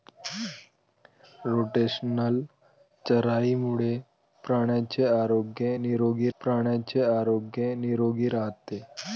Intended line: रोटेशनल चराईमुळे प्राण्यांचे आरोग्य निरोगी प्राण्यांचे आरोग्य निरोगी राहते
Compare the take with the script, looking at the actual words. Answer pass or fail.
pass